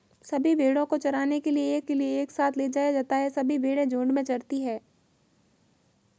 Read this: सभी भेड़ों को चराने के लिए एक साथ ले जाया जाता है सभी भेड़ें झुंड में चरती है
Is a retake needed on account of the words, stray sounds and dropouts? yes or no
yes